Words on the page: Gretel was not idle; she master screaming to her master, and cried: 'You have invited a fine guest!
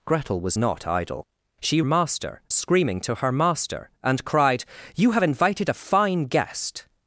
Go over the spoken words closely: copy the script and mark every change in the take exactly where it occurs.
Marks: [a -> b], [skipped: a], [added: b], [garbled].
Gretel was not idle; she master screaming to her master, and cried: 'You have invited a fine guest!